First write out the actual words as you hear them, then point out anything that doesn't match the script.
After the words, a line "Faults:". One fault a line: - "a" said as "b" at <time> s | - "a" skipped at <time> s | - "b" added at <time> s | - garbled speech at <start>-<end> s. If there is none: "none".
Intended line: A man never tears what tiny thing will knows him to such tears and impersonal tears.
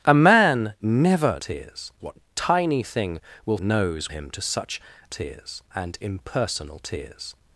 A man never tears what tiny thing will knows him to such tears and impersonal tears.
Faults:
none